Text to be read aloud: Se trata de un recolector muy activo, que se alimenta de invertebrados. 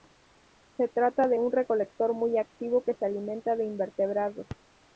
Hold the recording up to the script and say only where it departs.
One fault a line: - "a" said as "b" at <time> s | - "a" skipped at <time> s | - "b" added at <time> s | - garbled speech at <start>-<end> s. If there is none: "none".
none